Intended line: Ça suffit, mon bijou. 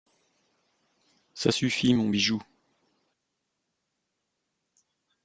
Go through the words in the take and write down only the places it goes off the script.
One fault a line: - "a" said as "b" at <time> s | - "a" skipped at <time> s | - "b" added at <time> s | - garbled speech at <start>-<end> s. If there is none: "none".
none